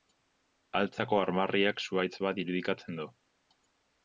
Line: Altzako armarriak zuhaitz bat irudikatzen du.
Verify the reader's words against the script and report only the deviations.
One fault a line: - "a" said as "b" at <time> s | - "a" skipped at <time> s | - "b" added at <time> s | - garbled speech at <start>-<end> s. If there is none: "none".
none